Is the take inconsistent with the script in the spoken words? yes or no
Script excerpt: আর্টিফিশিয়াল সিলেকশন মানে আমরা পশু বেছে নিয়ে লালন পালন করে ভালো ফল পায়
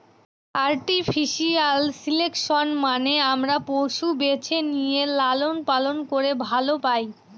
yes